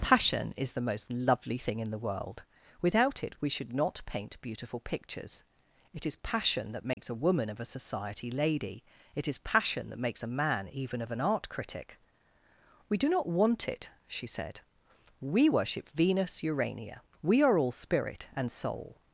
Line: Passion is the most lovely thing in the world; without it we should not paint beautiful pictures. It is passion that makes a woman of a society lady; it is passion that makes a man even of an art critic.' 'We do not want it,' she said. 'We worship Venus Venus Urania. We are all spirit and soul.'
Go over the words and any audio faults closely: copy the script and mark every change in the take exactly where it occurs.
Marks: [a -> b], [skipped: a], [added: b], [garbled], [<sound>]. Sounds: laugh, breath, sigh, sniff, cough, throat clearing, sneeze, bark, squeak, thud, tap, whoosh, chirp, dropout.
Passion is the most lovely thing in the world; without it we should not paint beautiful pictures. It is passion that makes [dropout] a woman of a society lady; it is passion that makes a man even of an art critic.' 'We do not want it,' she said. 'We worship Venus [skipped: Venus] Urania. We are all spirit and soul.'